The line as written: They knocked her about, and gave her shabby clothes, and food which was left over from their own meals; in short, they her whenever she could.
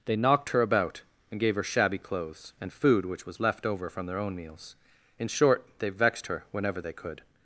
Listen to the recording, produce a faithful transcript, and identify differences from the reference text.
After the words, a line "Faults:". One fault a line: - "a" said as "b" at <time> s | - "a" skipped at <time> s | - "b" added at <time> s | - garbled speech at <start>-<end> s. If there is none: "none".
They knocked her about, and gave her shabby clothes, and food which was left over from their own meals; in short, they vexed her whenever they could.
Faults:
- "vexed" added at 5.9 s
- "she" said as "they" at 6.8 s